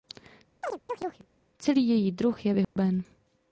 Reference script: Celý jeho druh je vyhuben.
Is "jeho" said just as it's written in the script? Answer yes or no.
no